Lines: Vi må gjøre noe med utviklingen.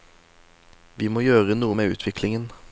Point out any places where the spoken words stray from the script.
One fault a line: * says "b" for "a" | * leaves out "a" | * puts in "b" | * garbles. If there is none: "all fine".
all fine